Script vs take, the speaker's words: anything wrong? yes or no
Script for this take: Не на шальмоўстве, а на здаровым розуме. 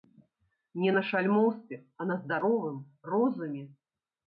no